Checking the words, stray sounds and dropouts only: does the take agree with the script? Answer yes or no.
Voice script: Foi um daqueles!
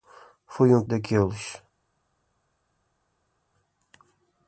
yes